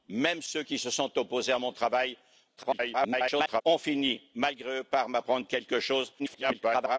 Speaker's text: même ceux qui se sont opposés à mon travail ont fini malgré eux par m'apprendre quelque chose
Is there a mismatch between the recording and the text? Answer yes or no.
yes